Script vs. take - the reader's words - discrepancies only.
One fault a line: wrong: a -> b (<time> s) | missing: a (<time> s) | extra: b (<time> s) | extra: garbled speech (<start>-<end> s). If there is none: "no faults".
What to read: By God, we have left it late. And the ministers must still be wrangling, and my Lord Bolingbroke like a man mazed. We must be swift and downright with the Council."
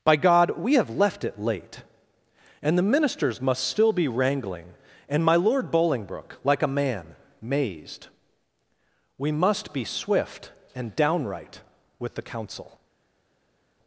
no faults